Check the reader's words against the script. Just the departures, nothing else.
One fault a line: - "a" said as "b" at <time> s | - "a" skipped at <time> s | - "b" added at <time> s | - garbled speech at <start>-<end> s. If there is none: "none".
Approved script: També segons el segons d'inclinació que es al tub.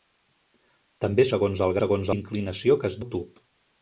none